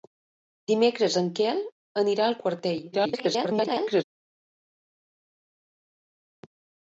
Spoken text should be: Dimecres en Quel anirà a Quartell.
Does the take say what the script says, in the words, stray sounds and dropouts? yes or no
no